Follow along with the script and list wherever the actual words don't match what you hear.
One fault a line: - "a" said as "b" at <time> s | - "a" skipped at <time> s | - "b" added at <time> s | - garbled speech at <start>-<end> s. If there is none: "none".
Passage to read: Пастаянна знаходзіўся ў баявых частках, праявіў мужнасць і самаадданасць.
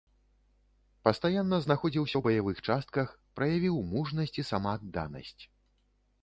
none